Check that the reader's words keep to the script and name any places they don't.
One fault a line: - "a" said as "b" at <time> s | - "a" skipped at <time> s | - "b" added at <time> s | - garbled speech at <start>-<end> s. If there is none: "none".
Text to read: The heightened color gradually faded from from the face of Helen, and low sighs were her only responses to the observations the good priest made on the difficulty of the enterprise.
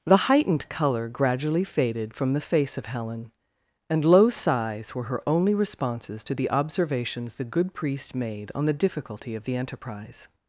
- "from" skipped at 2.3 s